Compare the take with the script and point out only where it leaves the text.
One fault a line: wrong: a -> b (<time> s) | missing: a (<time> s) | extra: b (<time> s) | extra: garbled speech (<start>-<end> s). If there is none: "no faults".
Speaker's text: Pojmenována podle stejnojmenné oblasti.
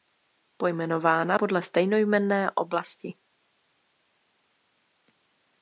no faults